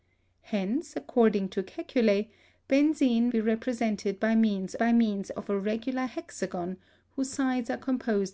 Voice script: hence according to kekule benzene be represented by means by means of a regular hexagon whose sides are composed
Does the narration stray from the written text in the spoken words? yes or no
no